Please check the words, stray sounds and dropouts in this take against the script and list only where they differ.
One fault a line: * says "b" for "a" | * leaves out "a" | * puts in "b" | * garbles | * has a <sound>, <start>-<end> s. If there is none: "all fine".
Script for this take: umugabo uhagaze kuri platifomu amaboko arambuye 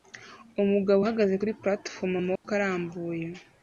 * has a dropout, 2.4-2.4 s